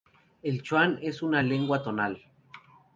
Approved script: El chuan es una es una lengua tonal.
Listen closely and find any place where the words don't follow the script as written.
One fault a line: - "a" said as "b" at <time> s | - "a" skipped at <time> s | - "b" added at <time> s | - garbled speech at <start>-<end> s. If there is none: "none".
- "es una" skipped at 1.4 s